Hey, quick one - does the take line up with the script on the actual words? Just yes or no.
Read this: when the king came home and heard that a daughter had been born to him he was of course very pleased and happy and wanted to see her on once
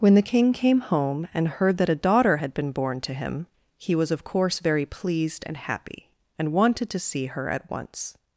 no